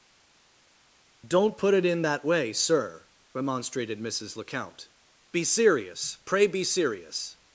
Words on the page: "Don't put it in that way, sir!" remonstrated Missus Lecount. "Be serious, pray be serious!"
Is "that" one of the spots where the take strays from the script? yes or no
no